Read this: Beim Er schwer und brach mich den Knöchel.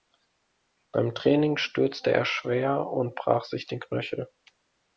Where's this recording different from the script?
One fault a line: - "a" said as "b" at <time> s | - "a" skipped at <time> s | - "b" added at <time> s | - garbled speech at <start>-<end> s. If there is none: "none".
- "Training stürzte" added at 1.1 s
- "mich" said as "sich" at 3.4 s